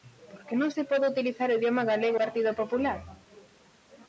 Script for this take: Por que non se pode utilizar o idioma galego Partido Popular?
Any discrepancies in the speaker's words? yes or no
no